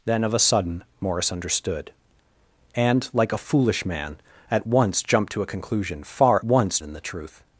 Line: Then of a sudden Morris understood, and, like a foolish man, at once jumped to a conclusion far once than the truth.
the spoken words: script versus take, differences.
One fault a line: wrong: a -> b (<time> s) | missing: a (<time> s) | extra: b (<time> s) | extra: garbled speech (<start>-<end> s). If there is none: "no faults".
no faults